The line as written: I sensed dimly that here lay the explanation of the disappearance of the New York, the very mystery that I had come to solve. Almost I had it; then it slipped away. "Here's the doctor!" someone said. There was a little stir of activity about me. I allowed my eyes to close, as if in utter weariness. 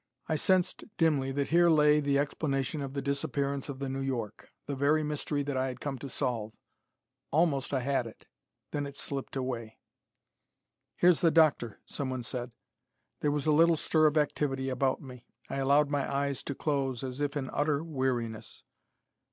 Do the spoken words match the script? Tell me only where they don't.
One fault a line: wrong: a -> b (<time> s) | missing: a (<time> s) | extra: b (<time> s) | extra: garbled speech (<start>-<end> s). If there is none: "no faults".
no faults